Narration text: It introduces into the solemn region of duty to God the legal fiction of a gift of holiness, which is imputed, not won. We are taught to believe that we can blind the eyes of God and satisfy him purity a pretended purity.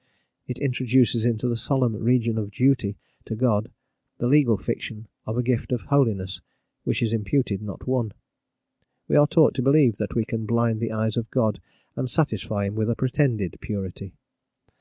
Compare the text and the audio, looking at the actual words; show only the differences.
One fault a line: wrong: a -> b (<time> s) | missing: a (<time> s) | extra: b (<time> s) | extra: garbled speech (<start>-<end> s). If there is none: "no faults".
wrong: purity -> with (12.8 s)